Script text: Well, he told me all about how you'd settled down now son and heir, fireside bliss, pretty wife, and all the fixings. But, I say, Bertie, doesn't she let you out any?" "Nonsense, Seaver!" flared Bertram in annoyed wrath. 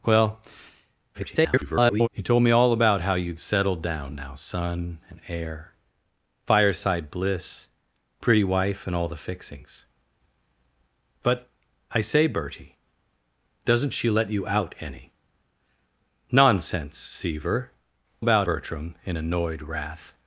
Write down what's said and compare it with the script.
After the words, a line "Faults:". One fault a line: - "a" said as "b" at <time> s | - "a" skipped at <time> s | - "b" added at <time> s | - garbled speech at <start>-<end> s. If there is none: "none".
Well, [garbled] he told me all about how you'd settled down now son and heir, fireside bliss, pretty wife, and all the fixings. But, I say, Bertie, doesn't she let you out any?" "Nonsense, Seaver!" about Bertram in annoyed wrath.
Faults:
- garbled speech at 1.1-2.1 s
- "flared" said as "about" at 18.2 s